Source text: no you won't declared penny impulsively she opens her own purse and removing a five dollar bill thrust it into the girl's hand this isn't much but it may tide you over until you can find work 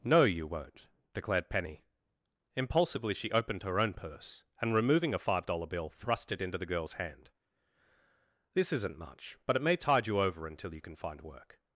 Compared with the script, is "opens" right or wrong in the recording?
wrong